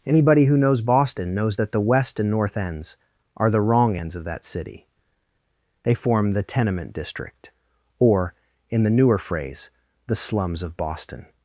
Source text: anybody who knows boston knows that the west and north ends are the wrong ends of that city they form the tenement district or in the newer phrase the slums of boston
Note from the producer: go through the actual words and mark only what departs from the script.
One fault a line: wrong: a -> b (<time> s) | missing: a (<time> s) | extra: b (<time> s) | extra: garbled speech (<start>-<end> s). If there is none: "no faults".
no faults